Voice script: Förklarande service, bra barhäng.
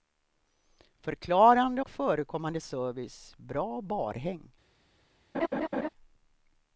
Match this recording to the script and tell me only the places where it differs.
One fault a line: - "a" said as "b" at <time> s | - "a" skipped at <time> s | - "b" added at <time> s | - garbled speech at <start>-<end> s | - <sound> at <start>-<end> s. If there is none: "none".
- "och förekommande" added at 1.8 s
- laugh at 5.3-5.9 s